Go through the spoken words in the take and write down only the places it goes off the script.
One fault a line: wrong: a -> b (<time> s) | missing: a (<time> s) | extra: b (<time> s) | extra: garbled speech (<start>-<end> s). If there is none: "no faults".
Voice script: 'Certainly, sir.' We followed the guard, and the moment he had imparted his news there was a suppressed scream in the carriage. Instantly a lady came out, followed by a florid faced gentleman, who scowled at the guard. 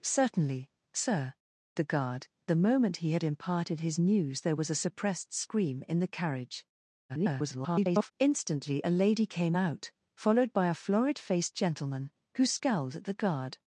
missing: We followed (1.3 s)
missing: and (2.3 s)
extra: garbled speech (7.1-8.1 s)